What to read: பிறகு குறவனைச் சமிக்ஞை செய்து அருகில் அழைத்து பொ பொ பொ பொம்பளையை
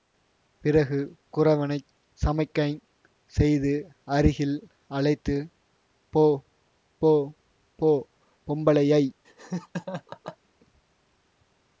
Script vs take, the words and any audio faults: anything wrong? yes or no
yes